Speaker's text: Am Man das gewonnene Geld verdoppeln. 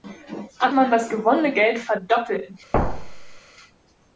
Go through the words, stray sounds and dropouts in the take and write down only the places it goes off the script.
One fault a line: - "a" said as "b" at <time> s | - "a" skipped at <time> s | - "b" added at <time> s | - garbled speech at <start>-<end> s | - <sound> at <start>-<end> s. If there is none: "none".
- thud at 2.7-3.4 s